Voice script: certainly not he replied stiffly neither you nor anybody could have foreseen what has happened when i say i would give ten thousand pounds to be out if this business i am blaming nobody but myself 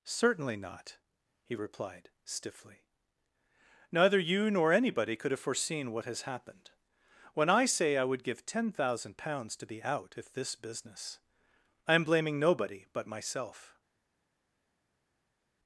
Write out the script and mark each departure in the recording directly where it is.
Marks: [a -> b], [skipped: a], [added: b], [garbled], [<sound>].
certainly not he replied stiffly neither you nor anybody could have foreseen what has happened when i say i would give ten thousand pounds to be out if this business i am blaming nobody but myself